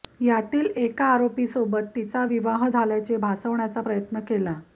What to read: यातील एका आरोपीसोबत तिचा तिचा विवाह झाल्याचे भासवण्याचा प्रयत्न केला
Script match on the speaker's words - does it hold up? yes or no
no